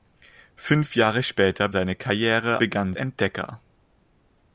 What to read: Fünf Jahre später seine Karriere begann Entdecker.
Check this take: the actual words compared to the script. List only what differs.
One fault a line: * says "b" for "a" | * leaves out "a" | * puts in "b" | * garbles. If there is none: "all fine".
all fine